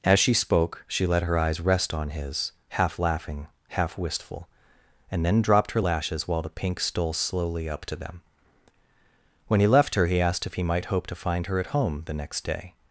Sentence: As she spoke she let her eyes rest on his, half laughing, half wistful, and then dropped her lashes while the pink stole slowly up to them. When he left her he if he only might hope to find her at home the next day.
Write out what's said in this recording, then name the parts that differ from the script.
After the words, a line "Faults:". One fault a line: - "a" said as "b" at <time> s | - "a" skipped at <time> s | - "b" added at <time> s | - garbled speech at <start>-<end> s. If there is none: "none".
As she spoke she let her eyes rest on his, half laughing, half wistful, and then dropped her lashes while the pink stole slowly up to them. When he left her he asked if he might hope to find her at home the next day.
Faults:
- "asked" added at 10.2 s
- "only" skipped at 10.6 s